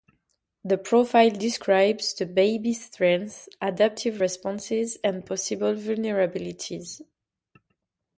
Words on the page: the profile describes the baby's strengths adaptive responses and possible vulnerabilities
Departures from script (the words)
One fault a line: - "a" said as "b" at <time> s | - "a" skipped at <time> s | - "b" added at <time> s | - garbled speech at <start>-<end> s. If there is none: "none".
none